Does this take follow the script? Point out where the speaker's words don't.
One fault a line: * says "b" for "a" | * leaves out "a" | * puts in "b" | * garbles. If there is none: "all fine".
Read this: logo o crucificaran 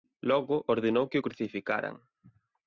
* puts in "ordenou que"